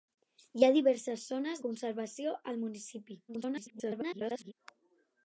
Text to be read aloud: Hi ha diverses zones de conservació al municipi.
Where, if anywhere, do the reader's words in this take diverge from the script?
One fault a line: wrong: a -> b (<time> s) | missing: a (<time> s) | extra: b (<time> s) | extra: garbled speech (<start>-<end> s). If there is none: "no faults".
missing: de (1.6 s)
extra: garbled speech (3.3-4.5 s)